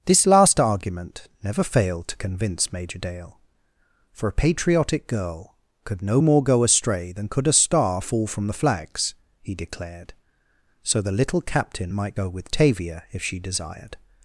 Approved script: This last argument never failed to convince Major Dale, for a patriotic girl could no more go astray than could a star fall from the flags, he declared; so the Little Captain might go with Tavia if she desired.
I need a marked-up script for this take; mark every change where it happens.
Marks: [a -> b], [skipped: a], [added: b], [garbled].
This last argument never failed to convince Major Dale, for a patriotic girl could no more go astray than could a star fall from the flags, he declared; so the Little Captain might go with Tavia if she desired.